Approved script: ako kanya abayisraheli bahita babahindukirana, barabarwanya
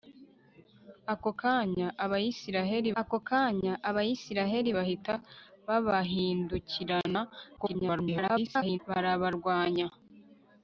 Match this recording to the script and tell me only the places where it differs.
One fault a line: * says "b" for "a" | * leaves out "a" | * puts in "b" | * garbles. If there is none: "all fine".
* puts in "ako kanya abayisraheli"
* garbles